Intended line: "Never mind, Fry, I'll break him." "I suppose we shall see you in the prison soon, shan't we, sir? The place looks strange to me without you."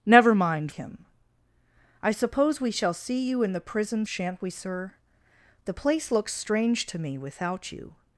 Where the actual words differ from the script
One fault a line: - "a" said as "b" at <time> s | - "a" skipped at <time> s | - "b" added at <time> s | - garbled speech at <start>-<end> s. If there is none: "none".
- "Fry I'll break" skipped at 0.7 s
- "soon" skipped at 4.1 s